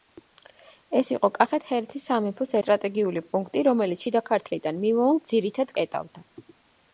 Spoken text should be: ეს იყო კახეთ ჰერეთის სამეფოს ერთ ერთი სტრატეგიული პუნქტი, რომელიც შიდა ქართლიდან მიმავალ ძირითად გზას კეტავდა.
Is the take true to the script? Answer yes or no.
no